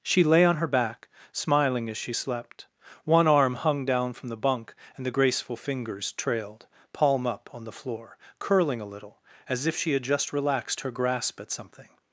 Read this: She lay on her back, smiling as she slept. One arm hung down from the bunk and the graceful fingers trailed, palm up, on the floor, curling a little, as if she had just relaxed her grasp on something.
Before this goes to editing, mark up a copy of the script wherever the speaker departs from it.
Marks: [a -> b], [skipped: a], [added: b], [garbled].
She lay on her back, smiling as she slept. One arm hung down from the bunk and the graceful fingers trailed, palm up, on the floor, curling a little, as if she had just relaxed her grasp [on -> at] something.